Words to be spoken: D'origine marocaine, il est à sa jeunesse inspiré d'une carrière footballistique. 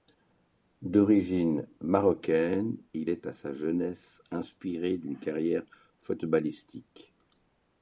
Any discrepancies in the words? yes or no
no